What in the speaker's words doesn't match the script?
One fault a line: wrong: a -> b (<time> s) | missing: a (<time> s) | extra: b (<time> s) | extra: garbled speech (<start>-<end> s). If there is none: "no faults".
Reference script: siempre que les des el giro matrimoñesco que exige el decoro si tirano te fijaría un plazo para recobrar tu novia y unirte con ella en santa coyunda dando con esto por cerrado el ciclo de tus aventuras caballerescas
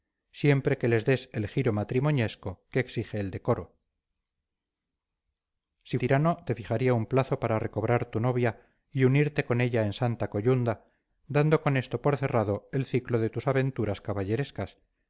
no faults